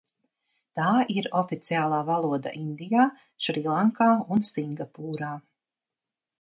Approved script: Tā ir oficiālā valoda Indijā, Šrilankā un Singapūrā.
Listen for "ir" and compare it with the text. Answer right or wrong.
right